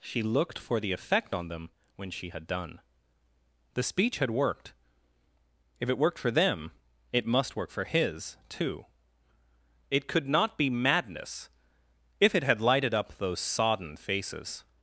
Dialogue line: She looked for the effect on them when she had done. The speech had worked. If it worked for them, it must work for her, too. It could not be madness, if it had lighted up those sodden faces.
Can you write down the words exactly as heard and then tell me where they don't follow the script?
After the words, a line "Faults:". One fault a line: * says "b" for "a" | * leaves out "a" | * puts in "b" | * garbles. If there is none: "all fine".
She looked for the effect on them when she had done. The speech had worked. If it worked for them, it must work for his, too. It could not be madness, if it had lighted up those sodden faces.
Faults:
* says "his" for "her"